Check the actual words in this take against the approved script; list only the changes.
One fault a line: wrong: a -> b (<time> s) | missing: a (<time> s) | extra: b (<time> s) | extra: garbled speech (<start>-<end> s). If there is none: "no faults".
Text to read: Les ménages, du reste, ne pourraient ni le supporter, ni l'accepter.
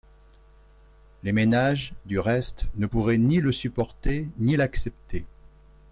no faults